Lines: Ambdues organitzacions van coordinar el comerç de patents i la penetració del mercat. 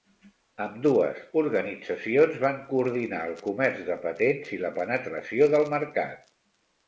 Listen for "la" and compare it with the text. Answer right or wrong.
right